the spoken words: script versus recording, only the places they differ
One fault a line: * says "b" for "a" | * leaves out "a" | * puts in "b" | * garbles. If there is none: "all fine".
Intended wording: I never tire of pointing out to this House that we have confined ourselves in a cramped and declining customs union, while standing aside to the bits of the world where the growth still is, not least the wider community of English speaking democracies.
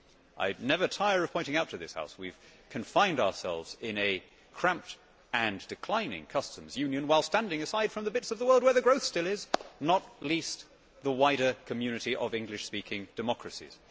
* says "from" for "to"